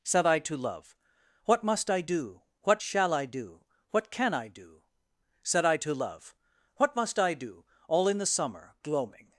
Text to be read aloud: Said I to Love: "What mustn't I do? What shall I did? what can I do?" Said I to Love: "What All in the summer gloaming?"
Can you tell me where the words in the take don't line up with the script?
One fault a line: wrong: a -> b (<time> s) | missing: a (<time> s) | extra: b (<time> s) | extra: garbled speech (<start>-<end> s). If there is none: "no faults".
wrong: mustn't -> must (1.6 s)
wrong: did -> do (3.3 s)
extra: must I do (7.0 s)